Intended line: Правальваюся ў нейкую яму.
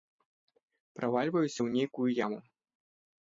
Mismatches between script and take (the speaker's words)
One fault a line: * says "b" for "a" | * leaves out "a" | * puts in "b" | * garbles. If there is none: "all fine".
all fine